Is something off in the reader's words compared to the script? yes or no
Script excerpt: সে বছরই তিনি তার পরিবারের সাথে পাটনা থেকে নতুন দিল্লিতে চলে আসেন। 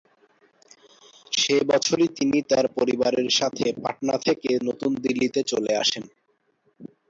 no